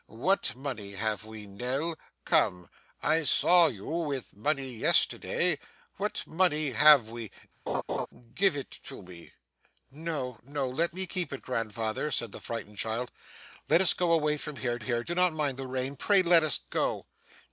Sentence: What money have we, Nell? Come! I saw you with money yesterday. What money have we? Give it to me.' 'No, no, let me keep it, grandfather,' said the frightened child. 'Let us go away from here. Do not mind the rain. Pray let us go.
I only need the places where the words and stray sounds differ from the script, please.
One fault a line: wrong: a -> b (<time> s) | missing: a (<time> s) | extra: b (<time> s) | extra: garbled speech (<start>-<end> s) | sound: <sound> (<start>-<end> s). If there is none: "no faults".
sound: laugh (7.7-8.1 s)
extra: here (14.8 s)